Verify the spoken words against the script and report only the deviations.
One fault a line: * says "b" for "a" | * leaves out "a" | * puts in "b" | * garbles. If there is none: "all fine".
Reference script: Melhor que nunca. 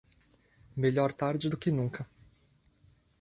* puts in "tarde do"